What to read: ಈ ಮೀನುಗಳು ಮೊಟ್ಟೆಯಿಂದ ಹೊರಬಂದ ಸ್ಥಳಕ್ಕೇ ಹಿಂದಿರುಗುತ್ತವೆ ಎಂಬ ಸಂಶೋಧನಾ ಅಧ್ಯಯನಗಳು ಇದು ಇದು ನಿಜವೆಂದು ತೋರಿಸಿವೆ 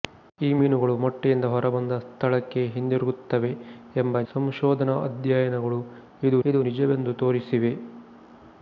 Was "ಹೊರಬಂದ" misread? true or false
false